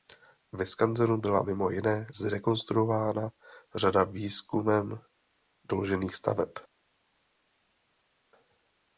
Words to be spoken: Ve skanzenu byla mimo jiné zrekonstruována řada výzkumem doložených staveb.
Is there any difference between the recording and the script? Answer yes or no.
no